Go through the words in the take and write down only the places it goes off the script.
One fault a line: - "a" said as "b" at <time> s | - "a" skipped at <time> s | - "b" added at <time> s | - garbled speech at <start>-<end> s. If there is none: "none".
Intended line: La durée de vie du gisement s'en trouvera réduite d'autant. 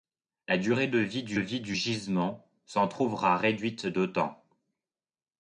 - "vie du" added at 1.3 s